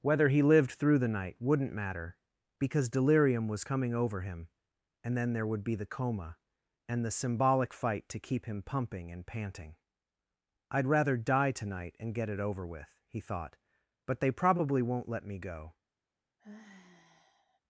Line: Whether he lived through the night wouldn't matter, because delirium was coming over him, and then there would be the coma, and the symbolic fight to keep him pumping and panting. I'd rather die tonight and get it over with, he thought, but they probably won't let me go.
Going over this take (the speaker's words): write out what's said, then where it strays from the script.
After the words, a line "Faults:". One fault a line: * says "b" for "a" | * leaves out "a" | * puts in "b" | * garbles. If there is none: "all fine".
Whether he lived through the night wouldn't matter, because delirium was coming over him, and then there would be the coma, and the symbolic fight to keep him pumping and panting. I'd rather die tonight and get it over with, he thought, but they probably won't let me go.
Faults:
all fine